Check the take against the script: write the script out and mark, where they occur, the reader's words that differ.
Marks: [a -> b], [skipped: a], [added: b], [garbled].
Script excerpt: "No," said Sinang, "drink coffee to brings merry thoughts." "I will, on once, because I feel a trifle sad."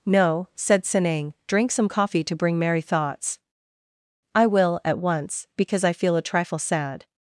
"No," said Sinang, "drink [added: some] coffee to [brings -> bring] merry thoughts." "I will, [on -> at] once, because I feel a trifle sad."